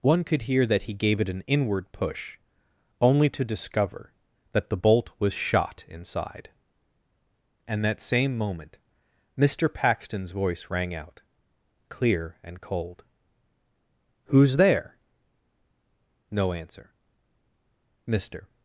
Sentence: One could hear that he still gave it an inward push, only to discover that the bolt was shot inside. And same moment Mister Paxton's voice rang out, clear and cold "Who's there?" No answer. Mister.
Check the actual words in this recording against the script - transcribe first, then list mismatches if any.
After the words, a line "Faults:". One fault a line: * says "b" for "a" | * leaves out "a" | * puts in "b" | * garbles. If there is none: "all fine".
One could hear that he gave it an inward push, only to discover that the bolt was shot inside. And that same moment Mister Paxton's voice rang out, clear and cold "Who's there?" No answer. Mister.
Faults:
* leaves out "still"
* puts in "that"